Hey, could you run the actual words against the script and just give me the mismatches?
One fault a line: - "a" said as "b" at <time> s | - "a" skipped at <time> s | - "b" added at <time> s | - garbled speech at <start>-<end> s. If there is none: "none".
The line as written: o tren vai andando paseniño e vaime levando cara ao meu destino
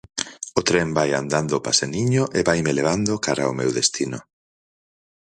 none